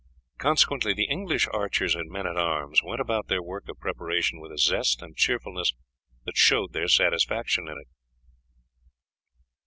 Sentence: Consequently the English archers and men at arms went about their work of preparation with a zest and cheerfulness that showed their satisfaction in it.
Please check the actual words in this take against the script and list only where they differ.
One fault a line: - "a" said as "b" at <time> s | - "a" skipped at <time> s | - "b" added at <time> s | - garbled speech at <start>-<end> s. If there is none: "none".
none